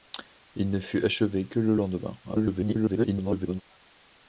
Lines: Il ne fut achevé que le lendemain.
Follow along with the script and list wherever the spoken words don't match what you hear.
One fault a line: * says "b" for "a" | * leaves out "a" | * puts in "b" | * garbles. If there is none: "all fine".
* garbles